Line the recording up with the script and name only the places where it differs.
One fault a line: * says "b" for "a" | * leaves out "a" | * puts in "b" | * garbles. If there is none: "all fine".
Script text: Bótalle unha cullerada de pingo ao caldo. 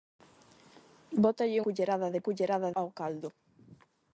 * leaves out "unha"
* says "cullerada" for "pingo"